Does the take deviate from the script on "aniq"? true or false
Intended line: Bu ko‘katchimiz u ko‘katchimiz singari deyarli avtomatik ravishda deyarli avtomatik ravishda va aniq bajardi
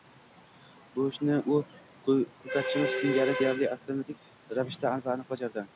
false